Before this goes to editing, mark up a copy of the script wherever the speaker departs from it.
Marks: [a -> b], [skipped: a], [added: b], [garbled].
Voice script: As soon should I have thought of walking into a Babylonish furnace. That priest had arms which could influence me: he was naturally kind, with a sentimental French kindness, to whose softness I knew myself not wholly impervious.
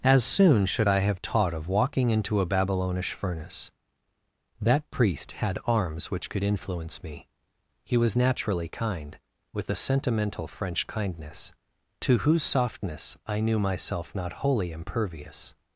As soon should I have [thought -> taught] of walking into a Babylonish furnace. That priest had arms which could influence me: he was naturally kind, with a sentimental French kindness, to whose softness I knew myself not wholly impervious.